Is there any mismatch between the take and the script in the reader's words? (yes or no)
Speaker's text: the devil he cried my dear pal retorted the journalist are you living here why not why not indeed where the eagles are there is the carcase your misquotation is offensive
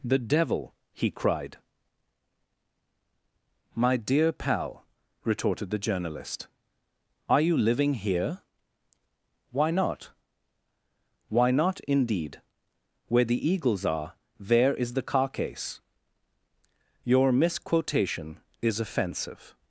no